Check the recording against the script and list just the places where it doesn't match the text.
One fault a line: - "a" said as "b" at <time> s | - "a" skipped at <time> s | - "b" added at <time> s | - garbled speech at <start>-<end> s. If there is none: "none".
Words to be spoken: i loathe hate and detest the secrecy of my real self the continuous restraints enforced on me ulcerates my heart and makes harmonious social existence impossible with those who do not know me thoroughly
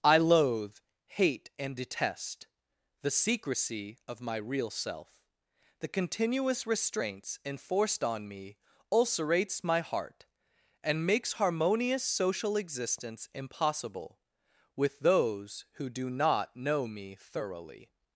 none